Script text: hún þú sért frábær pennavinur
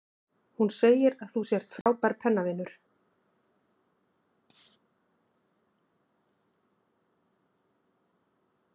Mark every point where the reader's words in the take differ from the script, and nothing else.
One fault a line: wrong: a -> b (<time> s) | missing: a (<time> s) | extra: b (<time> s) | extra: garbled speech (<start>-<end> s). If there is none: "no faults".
extra: segir að (0.8 s)